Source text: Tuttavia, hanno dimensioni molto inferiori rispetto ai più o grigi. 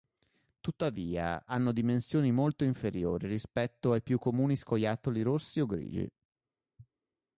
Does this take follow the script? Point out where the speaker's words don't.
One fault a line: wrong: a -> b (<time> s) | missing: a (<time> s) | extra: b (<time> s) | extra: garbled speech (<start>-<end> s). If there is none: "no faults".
extra: comuni scoiattoli rossi (4.2 s)